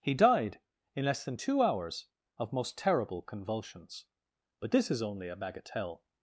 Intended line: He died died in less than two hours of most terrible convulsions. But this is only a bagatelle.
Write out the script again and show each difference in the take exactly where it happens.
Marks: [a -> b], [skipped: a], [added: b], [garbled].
He died [skipped: died] in less than two hours of most terrible convulsions. But this is only a bagatelle.